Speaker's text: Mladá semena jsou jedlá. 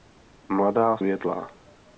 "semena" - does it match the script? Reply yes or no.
no